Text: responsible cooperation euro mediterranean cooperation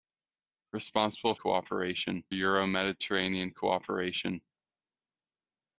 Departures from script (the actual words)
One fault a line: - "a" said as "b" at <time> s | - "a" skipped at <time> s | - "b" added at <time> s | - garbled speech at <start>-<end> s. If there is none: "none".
none